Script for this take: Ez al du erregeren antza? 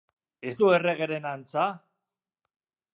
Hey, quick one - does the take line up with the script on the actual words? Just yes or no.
no